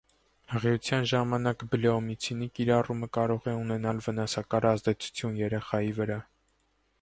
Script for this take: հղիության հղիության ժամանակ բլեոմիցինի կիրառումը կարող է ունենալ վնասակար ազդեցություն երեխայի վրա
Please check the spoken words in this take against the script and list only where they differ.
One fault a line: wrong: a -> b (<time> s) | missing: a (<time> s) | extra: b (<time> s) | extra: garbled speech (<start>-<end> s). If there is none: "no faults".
missing: հղիության (1.0 s)